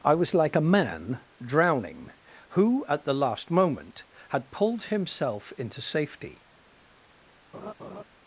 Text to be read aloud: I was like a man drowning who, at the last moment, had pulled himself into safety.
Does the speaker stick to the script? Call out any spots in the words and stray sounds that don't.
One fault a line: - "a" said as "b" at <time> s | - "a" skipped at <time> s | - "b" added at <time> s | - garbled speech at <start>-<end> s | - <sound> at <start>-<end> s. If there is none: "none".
- laugh at 7.5-8.0 s